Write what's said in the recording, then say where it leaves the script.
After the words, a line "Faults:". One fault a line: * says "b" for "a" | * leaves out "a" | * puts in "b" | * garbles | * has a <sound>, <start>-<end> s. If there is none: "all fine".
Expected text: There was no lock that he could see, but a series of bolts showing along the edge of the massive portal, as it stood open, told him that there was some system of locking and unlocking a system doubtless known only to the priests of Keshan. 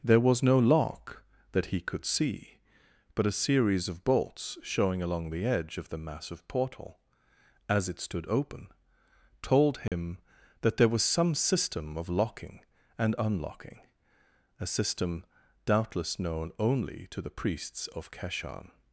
There was no lock that he could see, but a series of bolts showing along the edge of the massive portal, as it stood open, told him that there was some system of locking and unlocking a system doubtless known only to the priests of Keshan.
Faults:
* has a dropout, 9.9-9.9 s